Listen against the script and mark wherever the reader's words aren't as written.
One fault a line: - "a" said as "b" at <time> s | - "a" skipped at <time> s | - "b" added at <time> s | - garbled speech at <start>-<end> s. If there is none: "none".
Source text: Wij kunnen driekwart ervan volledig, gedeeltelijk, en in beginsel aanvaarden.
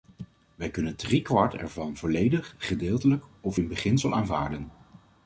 - "en" said as "of" at 3.4 s